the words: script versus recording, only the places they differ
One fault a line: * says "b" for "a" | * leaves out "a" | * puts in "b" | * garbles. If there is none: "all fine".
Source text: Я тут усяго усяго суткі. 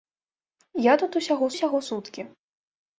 all fine